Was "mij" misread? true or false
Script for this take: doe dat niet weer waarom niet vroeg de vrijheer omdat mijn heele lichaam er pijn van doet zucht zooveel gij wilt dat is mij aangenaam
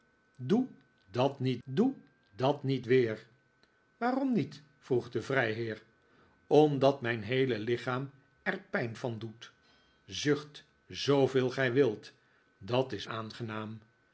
true